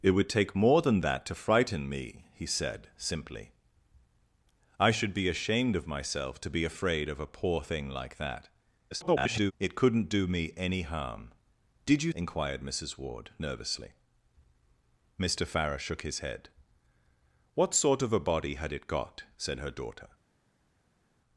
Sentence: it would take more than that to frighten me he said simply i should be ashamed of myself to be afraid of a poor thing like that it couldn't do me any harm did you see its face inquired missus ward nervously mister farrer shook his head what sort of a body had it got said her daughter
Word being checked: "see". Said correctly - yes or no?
no